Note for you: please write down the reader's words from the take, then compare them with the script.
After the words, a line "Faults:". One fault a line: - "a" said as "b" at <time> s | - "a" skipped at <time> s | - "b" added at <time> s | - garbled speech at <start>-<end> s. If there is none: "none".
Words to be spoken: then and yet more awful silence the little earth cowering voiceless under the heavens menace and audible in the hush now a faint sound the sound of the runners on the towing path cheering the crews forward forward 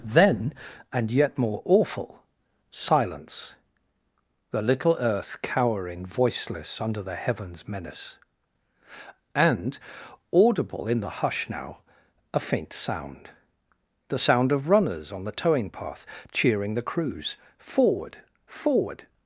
then and yet more awful silence the little earth cowering voiceless under the heavens menace and audible in the hush now a faint sound the sound of runners on the towing path cheering the crews forward forward
Faults:
- "the" skipped at 14.7 s